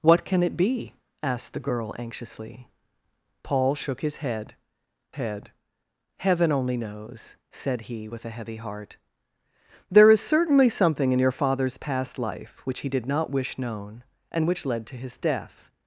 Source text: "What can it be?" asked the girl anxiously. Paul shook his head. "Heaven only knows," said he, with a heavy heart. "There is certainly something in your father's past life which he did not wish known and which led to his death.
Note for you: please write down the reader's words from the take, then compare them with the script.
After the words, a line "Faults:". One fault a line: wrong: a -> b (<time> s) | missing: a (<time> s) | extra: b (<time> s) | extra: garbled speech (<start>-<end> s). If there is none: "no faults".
"What can it be?" asked the girl anxiously. Paul shook his head head. "Heaven only knows," said he, with a heavy heart. "There is certainly something in your father's past life which he did not wish known and which led to his death.
Faults:
extra: head (5.1 s)